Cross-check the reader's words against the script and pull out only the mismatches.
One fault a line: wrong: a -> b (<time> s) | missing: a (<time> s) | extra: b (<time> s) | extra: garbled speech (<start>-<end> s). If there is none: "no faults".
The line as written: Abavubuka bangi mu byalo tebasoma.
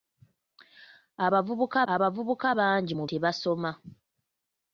extra: abavubuka (1.9 s)
missing: byalo (3.0 s)